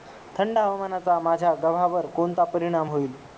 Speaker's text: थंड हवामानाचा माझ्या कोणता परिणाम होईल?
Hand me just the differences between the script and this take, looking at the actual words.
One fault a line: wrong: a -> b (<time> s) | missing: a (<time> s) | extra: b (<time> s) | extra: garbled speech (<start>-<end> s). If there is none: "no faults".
extra: गव्हावर (1.5 s)